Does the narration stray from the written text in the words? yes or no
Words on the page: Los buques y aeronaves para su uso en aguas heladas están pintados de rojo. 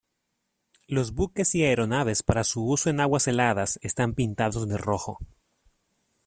no